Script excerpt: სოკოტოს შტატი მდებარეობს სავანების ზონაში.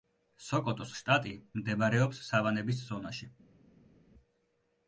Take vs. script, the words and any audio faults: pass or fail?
pass